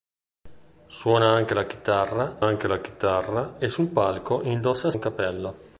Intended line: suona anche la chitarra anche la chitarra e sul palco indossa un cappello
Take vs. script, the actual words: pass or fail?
pass